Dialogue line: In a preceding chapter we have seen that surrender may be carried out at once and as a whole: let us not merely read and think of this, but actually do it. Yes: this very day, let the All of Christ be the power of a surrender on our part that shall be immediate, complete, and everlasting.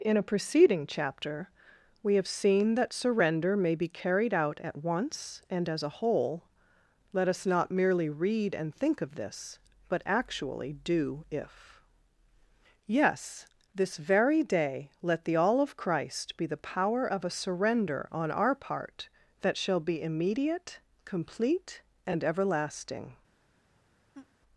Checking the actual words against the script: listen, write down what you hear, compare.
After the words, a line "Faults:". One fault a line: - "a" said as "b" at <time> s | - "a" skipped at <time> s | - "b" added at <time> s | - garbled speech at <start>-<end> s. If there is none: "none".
In a preceding chapter we have seen that surrender may be carried out at once and as a whole: let us not merely read and think of this, but actually do if. Yes: this very day, let the All of Christ be the power of a surrender on our part that shall be immediate, complete, and everlasting.
Faults:
- "it" said as "if" at 11.3 s